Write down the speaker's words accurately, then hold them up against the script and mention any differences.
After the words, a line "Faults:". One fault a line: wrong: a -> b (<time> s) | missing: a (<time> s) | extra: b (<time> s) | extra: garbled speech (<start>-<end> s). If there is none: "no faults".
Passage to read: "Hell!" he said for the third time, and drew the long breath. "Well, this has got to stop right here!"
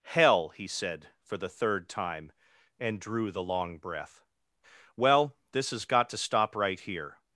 "Hell!" he said for the third time, and drew the long breath. "Well, this has got to stop right here!"
Faults:
no faults